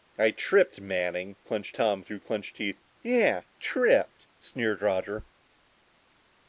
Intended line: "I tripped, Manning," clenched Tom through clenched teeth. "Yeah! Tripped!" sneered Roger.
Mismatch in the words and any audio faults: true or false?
false